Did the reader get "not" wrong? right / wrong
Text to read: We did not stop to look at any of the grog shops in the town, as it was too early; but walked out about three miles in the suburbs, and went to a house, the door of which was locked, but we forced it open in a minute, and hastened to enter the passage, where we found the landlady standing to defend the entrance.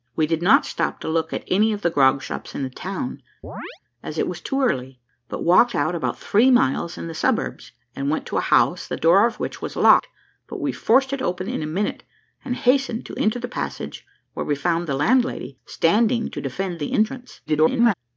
right